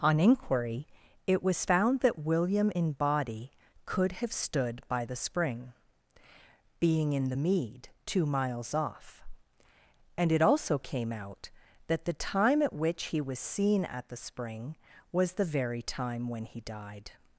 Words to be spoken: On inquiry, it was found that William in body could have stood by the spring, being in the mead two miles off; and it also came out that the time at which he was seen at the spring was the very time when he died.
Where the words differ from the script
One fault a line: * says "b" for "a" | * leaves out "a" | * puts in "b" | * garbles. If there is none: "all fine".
all fine